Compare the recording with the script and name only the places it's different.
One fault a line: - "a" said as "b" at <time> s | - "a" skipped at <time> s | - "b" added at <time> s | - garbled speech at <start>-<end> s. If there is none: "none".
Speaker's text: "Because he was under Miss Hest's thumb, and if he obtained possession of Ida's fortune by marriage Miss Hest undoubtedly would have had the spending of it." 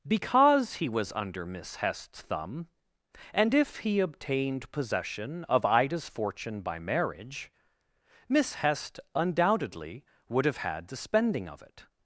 none